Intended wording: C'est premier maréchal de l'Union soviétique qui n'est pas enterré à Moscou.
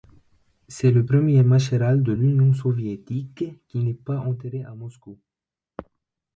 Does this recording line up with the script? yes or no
no